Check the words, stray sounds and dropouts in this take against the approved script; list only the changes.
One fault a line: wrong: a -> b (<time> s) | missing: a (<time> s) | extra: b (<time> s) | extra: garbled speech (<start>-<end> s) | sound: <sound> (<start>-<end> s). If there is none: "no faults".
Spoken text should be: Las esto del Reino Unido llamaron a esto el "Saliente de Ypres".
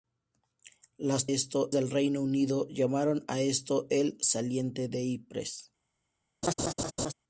sound: laugh (6.4-7.1 s)